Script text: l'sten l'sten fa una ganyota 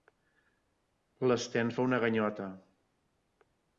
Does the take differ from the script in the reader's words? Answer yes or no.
yes